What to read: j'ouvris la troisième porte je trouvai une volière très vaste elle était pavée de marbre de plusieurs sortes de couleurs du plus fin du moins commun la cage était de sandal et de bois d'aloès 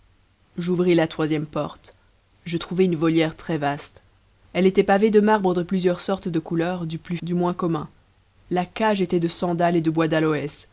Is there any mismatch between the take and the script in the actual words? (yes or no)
yes